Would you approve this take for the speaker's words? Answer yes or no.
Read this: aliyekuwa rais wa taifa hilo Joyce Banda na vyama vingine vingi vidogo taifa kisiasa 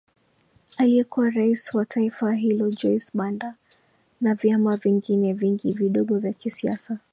no